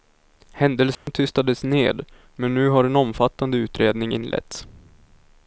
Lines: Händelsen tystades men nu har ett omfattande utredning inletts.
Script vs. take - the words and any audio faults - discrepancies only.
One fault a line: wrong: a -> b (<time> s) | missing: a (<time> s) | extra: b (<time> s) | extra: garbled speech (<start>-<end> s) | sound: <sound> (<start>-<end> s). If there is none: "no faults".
sound: dropout (0.9-1.1 s)
extra: ned (1.6 s)
wrong: ett -> en (2.8 s)